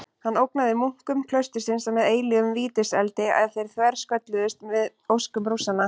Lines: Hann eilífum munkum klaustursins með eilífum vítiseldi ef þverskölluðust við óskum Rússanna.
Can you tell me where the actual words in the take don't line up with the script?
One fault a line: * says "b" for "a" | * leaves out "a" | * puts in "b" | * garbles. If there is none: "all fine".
* says "ógnaði" for "eilífum"
* puts in "þeir"